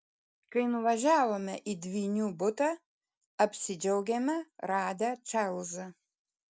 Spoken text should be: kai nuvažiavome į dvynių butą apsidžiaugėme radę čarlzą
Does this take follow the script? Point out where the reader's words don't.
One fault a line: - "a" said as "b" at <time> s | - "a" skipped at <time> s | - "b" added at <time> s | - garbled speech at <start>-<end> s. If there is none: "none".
none